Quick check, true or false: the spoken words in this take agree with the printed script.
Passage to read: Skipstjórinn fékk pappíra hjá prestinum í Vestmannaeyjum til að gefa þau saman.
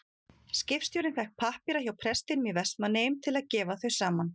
true